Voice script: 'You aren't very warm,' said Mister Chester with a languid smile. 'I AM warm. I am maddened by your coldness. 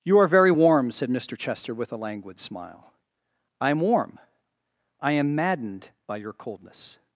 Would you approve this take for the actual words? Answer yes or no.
no